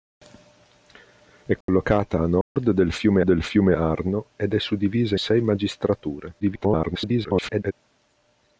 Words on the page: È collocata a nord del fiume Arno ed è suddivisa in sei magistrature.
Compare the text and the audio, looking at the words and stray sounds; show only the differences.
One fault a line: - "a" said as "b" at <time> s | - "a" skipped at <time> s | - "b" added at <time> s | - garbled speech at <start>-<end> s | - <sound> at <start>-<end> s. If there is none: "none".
- dropout at 1.6-1.7 s
- dropout at 2.4-2.6 s
- "del fiume" added at 3.2 s
- "in" skipped at 5.2 s
- garbled speech at 6.4-7.7 s